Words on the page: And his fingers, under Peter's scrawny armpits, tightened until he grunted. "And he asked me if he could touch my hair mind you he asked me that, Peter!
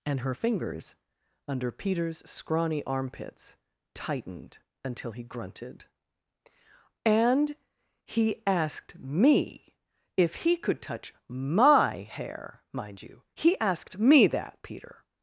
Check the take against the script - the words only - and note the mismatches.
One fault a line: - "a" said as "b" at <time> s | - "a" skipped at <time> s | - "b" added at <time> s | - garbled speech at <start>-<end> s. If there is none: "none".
- "his" said as "her" at 0.2 s